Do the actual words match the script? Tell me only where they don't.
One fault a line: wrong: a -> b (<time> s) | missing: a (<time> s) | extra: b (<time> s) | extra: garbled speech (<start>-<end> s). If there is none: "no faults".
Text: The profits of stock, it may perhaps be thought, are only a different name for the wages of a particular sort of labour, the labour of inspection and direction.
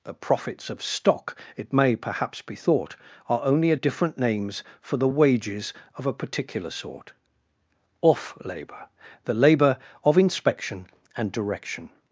wrong: name -> names (4.2 s)
wrong: of -> off (8.0 s)